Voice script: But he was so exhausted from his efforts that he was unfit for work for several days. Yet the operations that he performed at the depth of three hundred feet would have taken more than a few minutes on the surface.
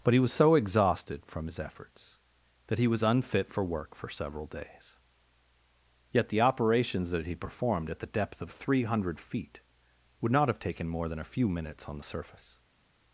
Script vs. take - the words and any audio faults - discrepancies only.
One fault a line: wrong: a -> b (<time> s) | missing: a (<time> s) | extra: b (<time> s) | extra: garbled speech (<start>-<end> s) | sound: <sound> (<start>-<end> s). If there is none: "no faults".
extra: not (10.3 s)